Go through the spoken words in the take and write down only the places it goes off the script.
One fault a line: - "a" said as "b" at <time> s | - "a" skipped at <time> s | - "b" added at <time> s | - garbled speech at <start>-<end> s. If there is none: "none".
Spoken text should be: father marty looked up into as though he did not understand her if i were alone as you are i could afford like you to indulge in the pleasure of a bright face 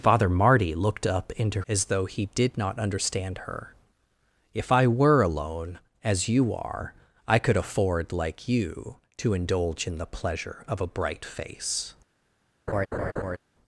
none